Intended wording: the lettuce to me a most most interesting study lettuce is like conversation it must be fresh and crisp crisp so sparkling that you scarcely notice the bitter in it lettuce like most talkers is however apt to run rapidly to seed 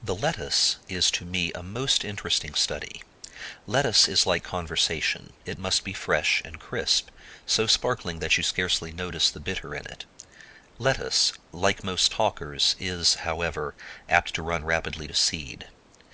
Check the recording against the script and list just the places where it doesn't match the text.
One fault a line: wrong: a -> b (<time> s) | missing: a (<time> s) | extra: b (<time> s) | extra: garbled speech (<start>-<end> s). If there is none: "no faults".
extra: is (0.9 s)
missing: most (2.0 s)
missing: crisp (7.1 s)